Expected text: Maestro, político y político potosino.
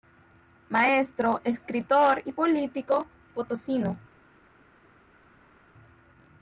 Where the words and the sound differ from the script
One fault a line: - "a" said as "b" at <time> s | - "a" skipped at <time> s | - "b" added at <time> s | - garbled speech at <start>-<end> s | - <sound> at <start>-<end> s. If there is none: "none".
- "político" said as "escritor" at 1.4 s